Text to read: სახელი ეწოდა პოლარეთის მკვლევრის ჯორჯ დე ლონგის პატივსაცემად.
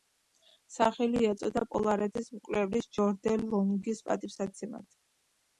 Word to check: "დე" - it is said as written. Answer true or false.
true